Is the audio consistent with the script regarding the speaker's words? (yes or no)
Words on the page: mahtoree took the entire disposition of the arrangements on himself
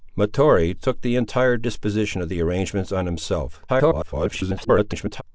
no